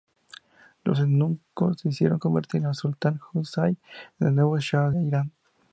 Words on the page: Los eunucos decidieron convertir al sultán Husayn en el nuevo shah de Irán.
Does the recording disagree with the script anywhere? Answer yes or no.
yes